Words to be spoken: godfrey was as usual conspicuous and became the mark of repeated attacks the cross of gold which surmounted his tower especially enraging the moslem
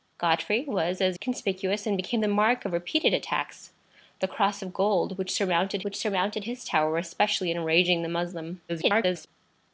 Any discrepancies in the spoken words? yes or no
yes